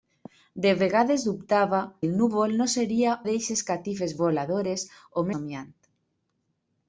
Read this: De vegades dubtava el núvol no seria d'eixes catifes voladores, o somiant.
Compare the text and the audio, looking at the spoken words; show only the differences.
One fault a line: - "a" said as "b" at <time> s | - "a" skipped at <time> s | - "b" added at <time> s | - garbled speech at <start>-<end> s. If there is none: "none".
none